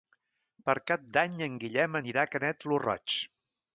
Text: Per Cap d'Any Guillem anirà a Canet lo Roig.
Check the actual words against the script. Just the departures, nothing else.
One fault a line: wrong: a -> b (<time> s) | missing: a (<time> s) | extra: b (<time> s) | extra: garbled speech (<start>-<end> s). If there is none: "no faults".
extra: en (1.5 s)